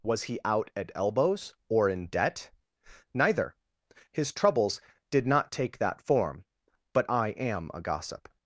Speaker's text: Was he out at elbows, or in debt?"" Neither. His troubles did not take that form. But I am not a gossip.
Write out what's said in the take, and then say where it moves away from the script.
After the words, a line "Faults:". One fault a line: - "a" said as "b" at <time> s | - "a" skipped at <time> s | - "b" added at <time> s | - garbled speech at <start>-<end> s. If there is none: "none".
Was he out at elbows, or in debt?"" Neither. His troubles did not take that form. But I am a gossip.
Faults:
- "not" skipped at 7.7 s